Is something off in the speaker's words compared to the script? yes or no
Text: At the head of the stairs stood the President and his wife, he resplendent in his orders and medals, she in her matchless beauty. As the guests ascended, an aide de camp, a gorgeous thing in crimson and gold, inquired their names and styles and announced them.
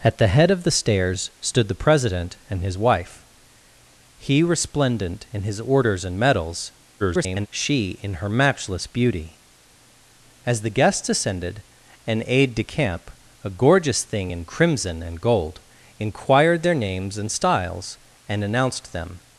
yes